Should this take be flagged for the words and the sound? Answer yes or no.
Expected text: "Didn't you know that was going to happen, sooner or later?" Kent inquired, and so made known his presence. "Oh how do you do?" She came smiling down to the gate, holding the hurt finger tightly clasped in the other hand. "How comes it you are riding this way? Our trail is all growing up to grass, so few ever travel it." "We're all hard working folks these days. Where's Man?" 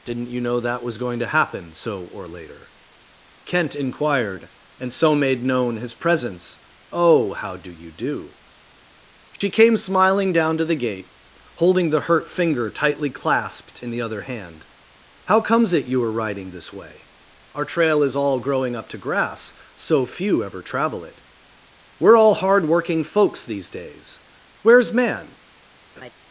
yes